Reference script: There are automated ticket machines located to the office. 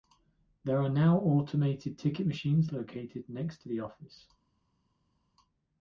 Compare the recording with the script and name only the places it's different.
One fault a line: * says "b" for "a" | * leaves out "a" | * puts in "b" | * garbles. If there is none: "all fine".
* puts in "now"
* puts in "next"